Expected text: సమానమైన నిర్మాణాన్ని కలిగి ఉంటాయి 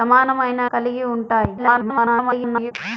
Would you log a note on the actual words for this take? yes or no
yes